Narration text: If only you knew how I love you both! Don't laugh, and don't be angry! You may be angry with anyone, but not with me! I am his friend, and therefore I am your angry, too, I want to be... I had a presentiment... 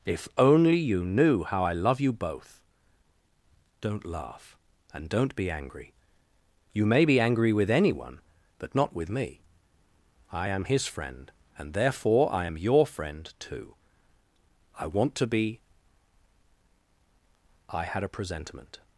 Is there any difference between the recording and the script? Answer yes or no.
yes